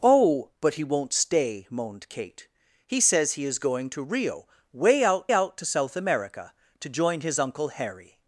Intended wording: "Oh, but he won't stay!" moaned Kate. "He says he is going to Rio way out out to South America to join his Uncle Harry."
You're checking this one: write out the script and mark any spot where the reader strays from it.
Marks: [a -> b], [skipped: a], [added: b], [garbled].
"Oh, but he won't stay!" moaned Kate. "He says he is going to Rio way out out to South America to join his Uncle Harry."